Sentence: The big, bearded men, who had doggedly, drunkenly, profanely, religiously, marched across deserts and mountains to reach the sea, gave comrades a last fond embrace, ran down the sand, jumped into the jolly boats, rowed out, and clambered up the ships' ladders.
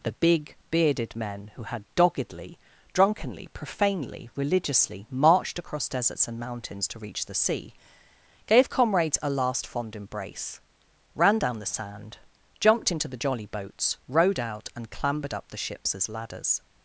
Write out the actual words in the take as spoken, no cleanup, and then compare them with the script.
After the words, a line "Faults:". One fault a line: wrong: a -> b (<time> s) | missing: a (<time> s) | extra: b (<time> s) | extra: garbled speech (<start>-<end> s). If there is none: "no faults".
The big, bearded men, who had doggedly, drunkenly, profanely, religiously, marched across deserts and mountains to reach the sea, gave comrades a last fond embrace, ran down the sand, jumped into the jolly boats, rowed out, and clambered up the ships' as ladders.
Faults:
extra: as (16.0 s)